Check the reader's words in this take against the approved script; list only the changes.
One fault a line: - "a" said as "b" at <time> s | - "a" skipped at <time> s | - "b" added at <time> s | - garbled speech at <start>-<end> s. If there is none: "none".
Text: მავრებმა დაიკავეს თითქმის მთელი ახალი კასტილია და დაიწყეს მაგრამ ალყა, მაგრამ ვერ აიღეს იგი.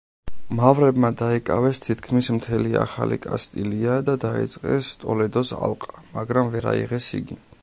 - "მაგრამ" said as "ტოლედოს" at 5.0 s